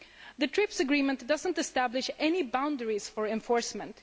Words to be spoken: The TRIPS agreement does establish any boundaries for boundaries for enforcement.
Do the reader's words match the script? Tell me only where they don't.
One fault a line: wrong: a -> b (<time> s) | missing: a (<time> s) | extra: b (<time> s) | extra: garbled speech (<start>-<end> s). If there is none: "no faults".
extra: not (1.4 s)
missing: boundaries for (3.3 s)